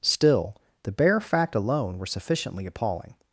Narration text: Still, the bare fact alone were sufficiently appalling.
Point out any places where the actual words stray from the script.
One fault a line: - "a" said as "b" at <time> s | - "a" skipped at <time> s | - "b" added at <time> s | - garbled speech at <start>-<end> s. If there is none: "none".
none